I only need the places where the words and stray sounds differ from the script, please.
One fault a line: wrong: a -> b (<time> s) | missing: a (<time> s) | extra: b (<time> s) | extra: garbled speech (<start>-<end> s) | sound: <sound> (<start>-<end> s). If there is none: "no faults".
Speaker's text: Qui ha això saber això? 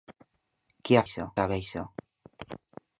no faults